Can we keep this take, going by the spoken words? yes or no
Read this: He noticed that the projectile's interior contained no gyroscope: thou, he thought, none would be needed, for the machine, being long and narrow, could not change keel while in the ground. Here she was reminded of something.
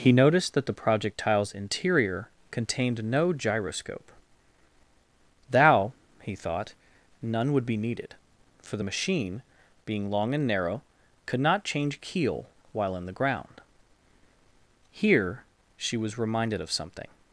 yes